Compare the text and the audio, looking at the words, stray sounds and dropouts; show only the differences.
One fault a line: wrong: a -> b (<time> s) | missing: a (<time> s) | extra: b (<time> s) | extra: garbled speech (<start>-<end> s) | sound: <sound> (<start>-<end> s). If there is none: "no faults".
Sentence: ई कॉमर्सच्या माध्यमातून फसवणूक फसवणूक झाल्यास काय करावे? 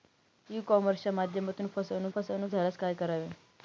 no faults